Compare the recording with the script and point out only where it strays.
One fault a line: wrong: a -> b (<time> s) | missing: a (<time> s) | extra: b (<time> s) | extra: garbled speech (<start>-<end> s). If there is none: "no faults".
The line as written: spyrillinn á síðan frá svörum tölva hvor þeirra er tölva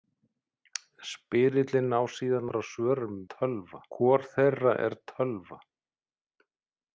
no faults